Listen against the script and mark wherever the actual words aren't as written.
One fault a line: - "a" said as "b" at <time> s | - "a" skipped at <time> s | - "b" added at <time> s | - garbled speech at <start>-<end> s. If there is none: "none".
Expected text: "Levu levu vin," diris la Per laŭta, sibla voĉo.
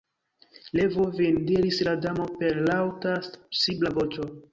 - "levu" skipped at 1.1 s
- "Damo" added at 2.1 s